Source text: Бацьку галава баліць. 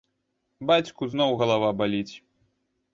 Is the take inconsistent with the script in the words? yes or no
yes